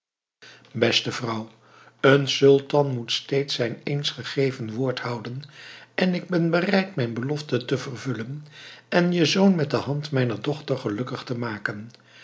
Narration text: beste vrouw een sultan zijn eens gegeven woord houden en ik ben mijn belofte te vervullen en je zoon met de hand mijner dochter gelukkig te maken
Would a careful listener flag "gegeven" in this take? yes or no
no